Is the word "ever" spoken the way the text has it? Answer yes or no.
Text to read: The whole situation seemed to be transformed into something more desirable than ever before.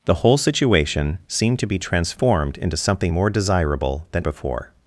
no